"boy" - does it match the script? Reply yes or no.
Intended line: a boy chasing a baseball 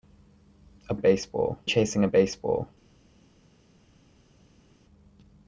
no